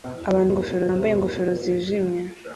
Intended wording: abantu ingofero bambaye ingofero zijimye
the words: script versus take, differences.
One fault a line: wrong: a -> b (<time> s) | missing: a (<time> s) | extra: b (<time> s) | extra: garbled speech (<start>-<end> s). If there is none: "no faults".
no faults